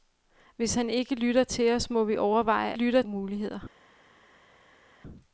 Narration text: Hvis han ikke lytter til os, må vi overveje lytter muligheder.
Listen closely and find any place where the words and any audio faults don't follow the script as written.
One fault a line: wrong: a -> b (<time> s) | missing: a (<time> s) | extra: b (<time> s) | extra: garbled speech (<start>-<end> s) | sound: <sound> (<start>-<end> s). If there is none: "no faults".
no faults